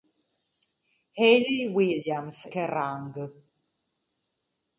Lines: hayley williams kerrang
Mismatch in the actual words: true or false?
false